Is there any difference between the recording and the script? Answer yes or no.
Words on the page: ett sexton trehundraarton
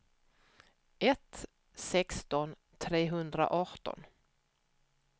no